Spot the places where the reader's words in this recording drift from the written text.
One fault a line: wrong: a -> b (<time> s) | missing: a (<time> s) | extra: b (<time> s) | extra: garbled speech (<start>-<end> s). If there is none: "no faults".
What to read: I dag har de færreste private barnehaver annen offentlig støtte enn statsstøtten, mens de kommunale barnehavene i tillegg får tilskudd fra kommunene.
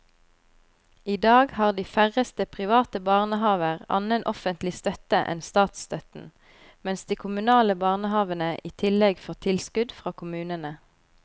no faults